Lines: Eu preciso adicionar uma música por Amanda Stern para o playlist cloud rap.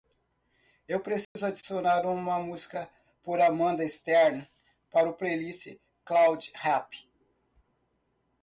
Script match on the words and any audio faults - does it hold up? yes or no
no